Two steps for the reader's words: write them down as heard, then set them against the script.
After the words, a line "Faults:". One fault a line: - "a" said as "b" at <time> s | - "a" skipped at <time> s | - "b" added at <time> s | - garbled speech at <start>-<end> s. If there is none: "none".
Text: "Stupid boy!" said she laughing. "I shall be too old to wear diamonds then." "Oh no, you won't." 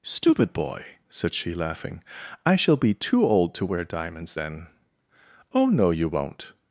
"Stupid boy!" said she laughing. "I shall be too old to wear diamonds then." "Oh no, you won't."
Faults:
none